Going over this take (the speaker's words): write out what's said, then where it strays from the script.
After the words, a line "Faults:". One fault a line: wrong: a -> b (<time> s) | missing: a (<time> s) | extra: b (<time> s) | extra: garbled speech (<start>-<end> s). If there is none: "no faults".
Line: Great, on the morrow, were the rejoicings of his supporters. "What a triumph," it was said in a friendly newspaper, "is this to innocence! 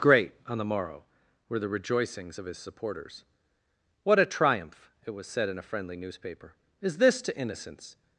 Great, on the morrow, were the rejoicings of his supporters. "What a triumph," it was said in a friendly newspaper, "is this to innocence!
Faults:
no faults